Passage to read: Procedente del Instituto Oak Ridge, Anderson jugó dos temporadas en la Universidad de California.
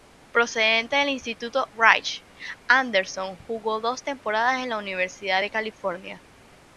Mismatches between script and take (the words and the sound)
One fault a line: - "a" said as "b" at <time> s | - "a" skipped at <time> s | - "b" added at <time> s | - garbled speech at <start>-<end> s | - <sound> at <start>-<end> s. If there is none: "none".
- "Oak" skipped at 1.7 s